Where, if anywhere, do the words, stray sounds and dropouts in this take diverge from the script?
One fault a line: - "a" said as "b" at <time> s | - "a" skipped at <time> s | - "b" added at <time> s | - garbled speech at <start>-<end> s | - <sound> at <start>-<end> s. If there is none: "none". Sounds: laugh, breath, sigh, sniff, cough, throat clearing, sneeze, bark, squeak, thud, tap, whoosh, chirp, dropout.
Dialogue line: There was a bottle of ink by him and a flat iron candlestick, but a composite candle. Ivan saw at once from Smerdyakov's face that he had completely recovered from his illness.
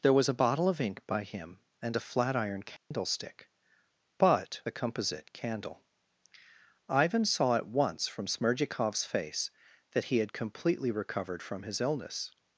- dropout at 2.8-2.9 s